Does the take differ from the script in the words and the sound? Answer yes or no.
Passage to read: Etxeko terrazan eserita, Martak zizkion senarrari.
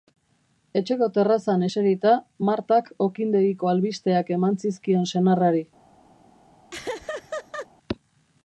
yes